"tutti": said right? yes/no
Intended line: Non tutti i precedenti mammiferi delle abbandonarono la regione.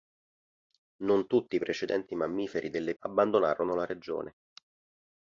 yes